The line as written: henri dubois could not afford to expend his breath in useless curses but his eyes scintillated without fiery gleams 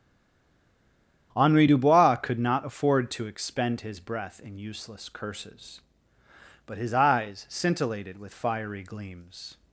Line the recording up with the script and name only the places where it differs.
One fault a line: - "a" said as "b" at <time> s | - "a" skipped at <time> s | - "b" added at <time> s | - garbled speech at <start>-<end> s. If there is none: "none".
- "without" said as "with" at 8.2 s